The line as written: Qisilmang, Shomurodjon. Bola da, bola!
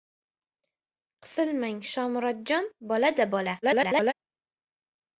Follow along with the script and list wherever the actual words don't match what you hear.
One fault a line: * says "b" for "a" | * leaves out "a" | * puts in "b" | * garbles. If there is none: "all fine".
* garbles